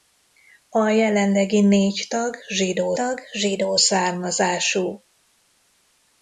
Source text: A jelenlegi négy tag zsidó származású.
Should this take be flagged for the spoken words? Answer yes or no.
yes